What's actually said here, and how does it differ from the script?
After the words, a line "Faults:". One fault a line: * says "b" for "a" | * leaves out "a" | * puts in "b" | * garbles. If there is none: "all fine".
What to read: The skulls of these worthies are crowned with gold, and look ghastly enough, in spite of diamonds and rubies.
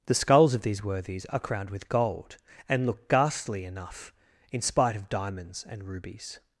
The skulls of these worthies are crowned with gold, and look ghastly enough, in spite of diamonds and rubies.
Faults:
all fine